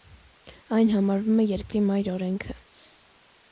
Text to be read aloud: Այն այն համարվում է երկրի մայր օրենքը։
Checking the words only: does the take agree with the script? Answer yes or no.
no